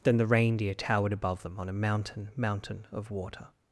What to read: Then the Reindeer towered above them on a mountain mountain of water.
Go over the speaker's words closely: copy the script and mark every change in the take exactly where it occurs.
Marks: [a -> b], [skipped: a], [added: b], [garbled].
Then the Reindeer towered above them on a mountain mountain of water.